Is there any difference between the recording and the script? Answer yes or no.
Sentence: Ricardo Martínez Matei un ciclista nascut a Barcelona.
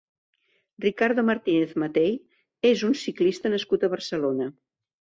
yes